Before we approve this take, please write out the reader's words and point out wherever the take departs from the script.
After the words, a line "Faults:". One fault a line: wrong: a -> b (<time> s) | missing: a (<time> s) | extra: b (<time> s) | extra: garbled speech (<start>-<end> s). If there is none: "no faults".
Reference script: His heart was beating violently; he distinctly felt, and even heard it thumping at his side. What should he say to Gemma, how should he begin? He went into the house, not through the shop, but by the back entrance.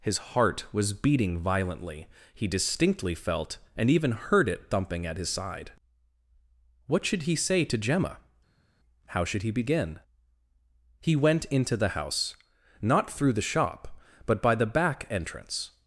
His heart was beating violently; he distinctly felt, and even heard it thumping at his side. What should he say to Gemma, how should he begin? He went into the house, not through the shop, but by the back entrance.
Faults:
no faults